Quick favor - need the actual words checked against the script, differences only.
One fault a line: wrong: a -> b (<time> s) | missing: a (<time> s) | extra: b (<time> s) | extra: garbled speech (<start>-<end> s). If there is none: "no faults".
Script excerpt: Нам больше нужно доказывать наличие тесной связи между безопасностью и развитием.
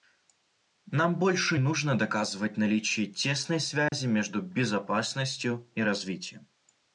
no faults